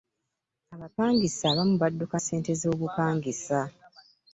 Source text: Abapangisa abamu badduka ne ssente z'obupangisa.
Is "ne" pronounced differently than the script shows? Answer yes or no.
yes